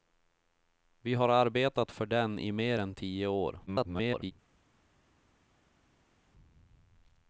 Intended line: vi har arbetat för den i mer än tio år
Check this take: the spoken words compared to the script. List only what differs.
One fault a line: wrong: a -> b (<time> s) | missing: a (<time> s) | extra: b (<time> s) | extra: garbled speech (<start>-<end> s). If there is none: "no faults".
extra: garbled speech (3.7-4.3 s)